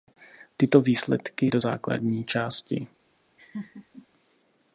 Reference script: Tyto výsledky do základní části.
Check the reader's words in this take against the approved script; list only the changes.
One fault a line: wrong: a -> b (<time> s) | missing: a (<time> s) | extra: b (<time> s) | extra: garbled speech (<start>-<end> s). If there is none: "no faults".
no faults